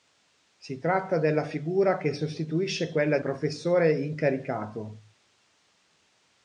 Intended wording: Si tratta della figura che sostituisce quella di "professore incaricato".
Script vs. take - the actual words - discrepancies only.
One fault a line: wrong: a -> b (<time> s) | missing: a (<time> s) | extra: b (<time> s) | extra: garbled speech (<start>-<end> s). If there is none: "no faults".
missing: di (3.2 s)